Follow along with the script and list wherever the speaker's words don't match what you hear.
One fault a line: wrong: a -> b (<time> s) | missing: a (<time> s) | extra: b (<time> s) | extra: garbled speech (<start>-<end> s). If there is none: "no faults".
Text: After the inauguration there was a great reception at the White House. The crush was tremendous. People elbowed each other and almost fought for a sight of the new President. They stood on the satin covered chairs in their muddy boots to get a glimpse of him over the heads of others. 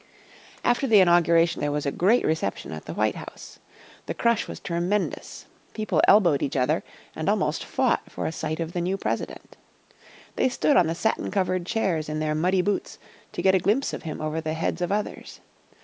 no faults